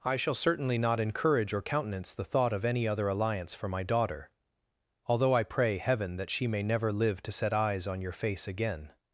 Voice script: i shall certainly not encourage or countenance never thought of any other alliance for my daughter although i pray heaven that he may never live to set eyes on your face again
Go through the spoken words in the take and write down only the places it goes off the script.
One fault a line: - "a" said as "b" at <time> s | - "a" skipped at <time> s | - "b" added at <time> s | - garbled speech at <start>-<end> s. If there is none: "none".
- "never" said as "the" at 2.1 s
- "he" said as "she" at 6.3 s